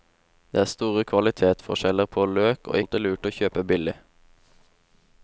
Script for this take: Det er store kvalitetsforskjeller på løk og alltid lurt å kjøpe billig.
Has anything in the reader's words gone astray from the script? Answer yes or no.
no